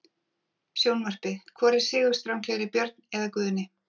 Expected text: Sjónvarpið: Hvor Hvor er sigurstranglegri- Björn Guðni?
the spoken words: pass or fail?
fail